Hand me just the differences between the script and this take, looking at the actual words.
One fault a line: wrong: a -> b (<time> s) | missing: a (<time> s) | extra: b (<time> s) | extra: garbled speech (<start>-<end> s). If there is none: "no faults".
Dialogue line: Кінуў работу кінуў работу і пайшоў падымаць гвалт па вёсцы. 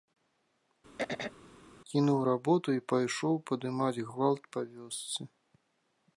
missing: кінуў работу (2.7 s)